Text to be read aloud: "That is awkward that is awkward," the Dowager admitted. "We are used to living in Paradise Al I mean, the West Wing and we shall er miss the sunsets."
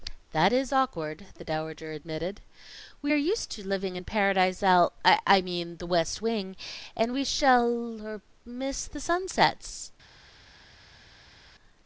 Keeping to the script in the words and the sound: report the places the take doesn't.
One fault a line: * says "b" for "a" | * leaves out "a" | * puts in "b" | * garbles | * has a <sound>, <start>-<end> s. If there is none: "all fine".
* leaves out "that is awkward"